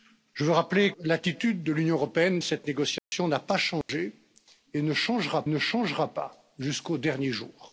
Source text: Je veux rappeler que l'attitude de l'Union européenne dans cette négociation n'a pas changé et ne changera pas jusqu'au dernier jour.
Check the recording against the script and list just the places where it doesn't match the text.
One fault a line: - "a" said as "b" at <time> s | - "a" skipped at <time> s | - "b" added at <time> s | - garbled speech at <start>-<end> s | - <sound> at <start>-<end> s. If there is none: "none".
- "que" skipped at 0.9 s
- "dans" skipped at 2.4 s
- dropout at 3.0-3.1 s
- dropout at 3.8-3.9 s
- "ne changera" added at 5.5 s